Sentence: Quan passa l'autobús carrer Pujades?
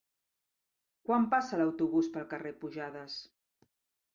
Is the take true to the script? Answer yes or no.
no